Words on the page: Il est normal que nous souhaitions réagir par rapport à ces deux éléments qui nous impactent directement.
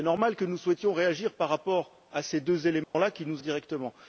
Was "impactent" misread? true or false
true